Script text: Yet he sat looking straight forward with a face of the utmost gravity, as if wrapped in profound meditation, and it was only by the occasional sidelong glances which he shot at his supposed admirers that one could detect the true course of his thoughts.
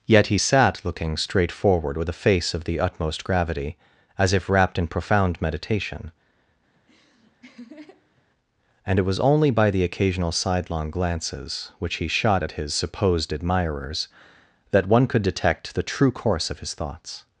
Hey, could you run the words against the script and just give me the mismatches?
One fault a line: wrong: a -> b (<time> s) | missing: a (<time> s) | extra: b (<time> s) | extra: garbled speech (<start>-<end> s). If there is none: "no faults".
no faults